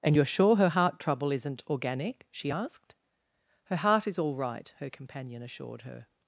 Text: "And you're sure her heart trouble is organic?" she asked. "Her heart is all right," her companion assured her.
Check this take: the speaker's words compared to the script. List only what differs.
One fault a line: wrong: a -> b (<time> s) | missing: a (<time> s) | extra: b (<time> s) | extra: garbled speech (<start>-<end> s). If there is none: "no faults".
wrong: is -> isn't (1.3 s)